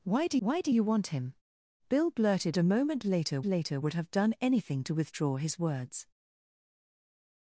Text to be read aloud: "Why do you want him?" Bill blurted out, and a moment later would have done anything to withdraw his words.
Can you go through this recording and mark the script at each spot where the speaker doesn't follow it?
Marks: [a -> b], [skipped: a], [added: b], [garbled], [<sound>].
"Why do [added: why do] you want him?" Bill blurted [skipped: out, and] a moment later [added: later] would have done anything to withdraw his words.